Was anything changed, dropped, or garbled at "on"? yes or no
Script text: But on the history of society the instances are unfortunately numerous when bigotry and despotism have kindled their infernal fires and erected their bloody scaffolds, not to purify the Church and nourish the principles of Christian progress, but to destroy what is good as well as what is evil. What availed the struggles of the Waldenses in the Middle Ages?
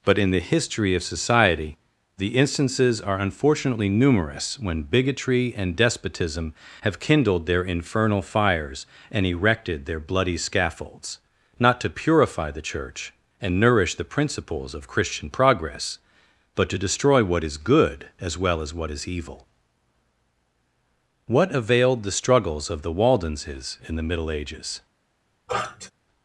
yes